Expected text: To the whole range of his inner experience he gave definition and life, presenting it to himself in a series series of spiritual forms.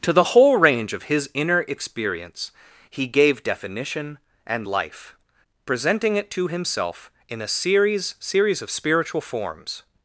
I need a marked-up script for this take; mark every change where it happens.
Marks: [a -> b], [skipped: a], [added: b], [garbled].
To the whole range of his inner experience he gave definition and life, presenting it to himself in a series series of spiritual forms.